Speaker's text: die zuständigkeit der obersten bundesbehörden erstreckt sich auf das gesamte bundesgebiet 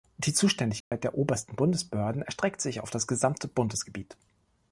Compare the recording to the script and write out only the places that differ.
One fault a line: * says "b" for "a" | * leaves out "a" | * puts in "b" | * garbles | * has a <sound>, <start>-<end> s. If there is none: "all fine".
* has a dropout, 0.8-0.9 s